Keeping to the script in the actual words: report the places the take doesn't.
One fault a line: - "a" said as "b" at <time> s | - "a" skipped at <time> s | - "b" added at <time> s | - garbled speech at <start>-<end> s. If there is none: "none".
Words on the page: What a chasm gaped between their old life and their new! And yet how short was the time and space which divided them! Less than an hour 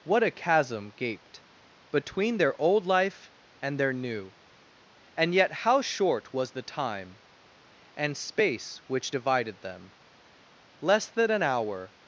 none